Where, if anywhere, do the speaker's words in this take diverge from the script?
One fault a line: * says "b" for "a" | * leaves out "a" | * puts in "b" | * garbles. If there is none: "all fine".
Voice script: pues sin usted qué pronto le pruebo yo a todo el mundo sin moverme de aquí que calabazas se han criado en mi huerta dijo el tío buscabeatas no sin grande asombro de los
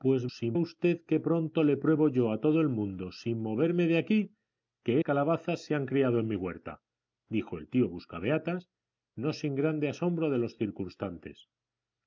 all fine